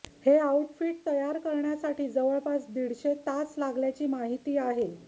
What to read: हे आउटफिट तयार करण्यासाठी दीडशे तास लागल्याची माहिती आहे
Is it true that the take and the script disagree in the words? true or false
true